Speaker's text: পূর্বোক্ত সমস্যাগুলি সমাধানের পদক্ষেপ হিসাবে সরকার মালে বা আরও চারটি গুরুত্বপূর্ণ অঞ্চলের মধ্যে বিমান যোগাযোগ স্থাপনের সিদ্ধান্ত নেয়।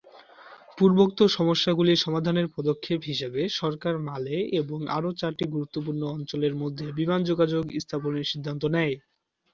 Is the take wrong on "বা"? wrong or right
wrong